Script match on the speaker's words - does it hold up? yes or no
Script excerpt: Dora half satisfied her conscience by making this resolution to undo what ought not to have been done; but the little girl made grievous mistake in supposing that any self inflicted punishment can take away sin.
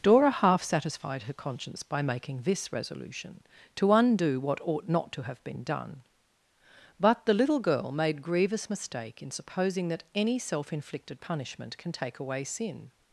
yes